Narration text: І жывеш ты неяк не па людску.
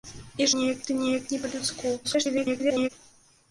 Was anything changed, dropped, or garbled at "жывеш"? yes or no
yes